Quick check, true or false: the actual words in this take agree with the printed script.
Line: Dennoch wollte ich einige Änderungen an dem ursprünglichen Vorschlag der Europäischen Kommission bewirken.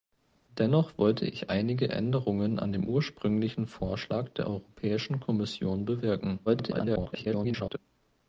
false